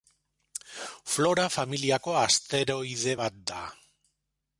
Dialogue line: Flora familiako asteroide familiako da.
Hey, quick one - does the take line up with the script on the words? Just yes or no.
no